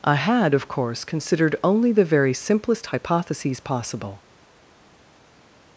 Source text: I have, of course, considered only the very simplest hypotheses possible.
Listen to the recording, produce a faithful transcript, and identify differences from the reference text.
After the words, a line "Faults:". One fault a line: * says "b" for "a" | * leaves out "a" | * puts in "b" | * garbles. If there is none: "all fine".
I had, of course, considered only the very simplest hypotheses possible.
Faults:
* says "had" for "have"